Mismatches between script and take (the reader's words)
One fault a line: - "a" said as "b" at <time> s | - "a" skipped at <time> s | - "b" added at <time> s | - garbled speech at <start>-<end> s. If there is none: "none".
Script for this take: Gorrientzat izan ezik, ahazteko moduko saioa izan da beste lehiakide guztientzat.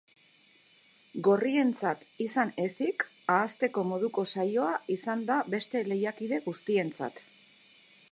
none